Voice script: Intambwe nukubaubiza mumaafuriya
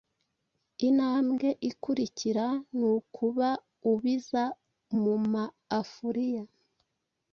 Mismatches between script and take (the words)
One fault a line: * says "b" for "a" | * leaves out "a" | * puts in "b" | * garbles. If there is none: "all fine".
* puts in "ikurikira"